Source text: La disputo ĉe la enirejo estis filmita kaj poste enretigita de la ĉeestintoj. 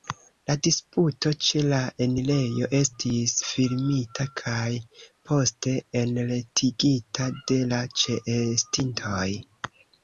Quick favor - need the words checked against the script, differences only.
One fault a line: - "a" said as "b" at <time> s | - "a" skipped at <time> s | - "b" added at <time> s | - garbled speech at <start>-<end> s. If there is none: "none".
none